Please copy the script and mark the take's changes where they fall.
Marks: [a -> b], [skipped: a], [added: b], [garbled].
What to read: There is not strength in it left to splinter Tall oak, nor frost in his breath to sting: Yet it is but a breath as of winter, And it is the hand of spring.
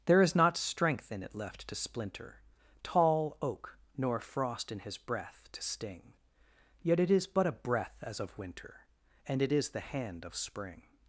There is not strength in it left to splinter Tall oak, nor frost in his breath to sting: Yet it is but a breath as of winter, And it is the hand of spring.